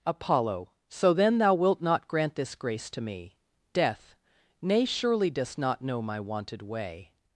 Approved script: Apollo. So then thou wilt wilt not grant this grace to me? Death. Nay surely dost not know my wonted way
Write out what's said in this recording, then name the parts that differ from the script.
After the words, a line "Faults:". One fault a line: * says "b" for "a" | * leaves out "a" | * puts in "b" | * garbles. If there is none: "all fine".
Apollo. So then thou wilt not grant this grace to me? Death. Nay surely dost not know my wonted way
Faults:
* leaves out "wilt"